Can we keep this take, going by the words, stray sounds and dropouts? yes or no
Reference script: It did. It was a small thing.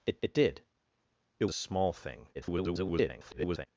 no